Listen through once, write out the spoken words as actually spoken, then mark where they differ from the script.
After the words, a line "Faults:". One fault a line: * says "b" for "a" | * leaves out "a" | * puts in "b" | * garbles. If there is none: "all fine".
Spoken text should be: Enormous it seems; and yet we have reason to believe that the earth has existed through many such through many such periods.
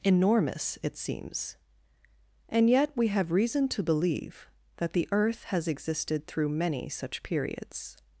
Enormous it seems; and yet we have reason to believe that the earth has existed through many such periods.
Faults:
* leaves out "through many such"